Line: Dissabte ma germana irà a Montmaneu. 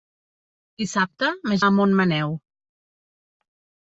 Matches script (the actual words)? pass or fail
fail